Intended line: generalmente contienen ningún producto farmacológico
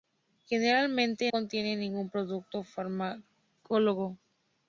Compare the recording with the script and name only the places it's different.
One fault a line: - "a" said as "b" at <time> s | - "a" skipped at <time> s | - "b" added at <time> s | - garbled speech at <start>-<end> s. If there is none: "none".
none